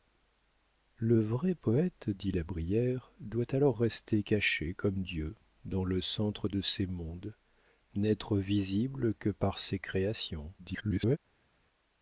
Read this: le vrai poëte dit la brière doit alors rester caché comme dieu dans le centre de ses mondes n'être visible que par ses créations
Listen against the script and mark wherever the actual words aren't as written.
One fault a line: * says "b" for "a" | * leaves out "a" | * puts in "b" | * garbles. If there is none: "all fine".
* garbles